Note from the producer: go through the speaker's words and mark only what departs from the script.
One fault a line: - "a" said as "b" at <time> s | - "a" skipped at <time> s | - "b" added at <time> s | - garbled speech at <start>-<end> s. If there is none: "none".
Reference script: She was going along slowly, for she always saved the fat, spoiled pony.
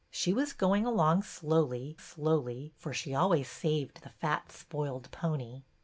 - "slowly" added at 2.0 s